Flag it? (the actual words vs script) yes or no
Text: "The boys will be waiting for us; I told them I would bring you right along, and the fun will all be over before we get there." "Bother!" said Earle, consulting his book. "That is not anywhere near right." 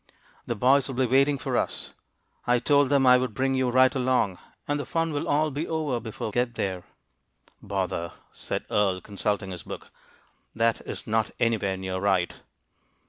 yes